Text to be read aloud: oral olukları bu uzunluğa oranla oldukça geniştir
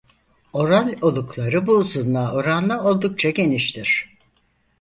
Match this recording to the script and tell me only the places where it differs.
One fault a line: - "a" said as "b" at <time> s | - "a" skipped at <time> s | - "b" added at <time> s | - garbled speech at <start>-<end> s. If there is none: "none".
none